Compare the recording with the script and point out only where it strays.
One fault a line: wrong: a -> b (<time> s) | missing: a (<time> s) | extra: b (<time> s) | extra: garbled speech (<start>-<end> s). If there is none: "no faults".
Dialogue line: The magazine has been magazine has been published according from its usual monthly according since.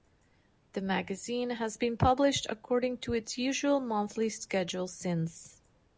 missing: magazine has been (1.9 s)
wrong: from -> to (3.0 s)
wrong: according -> schedule (4.3 s)